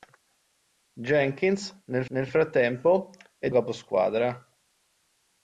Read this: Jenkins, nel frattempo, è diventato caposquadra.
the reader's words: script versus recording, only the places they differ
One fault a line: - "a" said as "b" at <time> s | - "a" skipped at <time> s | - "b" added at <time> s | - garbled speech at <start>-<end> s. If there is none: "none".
- "nel" added at 2.1 s
- "diventato" skipped at 3.5 s